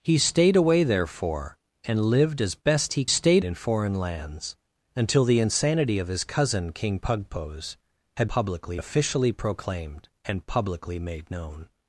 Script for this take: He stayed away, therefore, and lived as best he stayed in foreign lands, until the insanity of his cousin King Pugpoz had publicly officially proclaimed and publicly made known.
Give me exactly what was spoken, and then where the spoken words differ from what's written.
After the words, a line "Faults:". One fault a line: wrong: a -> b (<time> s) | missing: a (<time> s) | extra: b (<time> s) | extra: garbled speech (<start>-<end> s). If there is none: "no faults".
He stayed away, therefore, and lived as best he stayed in foreign lands, until the insanity of his cousin King Pugpoz had publicly officially proclaimed and publicly made known.
Faults:
no faults